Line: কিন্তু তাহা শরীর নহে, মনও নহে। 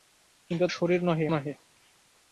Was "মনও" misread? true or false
true